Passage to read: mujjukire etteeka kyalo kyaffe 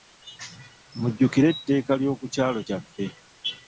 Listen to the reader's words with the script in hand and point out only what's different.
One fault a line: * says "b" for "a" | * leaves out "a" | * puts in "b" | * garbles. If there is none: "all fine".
* puts in "ly'oku"